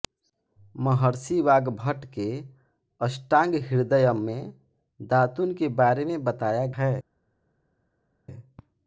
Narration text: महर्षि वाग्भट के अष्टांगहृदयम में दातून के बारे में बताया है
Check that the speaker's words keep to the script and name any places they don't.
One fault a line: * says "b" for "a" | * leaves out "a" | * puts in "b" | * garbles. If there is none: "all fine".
all fine